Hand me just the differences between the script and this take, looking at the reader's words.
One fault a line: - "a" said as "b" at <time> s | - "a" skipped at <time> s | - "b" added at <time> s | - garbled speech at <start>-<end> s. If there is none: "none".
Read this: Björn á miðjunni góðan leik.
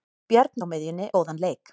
none